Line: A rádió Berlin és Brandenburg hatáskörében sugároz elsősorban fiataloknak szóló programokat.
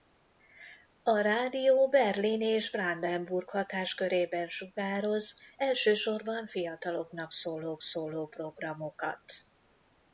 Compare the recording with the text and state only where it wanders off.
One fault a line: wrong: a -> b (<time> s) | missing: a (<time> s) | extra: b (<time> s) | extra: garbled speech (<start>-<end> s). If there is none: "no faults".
extra: szóló (7.8 s)